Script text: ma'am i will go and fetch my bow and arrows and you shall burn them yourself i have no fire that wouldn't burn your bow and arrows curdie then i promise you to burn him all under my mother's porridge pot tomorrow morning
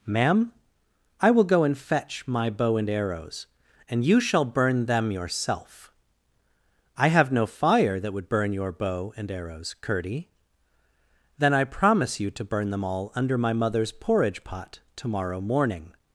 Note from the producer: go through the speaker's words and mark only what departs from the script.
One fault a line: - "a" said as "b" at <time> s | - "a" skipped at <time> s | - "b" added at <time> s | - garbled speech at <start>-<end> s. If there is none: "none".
- "wouldn't" said as "would" at 8.1 s
- "him" said as "them" at 12.7 s